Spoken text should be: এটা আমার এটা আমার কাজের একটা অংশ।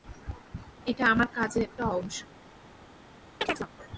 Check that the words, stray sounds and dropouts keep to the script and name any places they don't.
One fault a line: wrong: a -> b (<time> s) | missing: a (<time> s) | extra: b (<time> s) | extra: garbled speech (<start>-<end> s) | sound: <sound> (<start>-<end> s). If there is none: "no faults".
missing: এটা আমার (1.3 s)
sound: chirp (3.4-3.7 s)